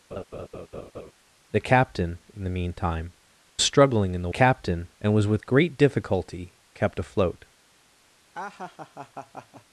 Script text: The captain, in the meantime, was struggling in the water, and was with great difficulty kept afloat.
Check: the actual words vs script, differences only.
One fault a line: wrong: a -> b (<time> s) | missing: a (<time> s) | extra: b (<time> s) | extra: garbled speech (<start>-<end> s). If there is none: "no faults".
missing: was (3.1 s)
wrong: water -> captain (4.3 s)